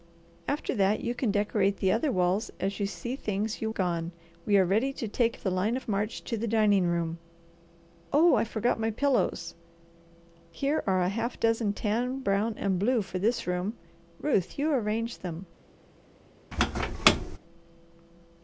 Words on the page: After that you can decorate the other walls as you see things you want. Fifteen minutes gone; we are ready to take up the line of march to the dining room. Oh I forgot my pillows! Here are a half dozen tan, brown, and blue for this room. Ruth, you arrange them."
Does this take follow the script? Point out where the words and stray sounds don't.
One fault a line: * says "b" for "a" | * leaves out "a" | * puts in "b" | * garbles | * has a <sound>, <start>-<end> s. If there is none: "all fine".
* leaves out "want Fifteen minutes"
* leaves out "up"
* has a squeak, 16.5-17.4 s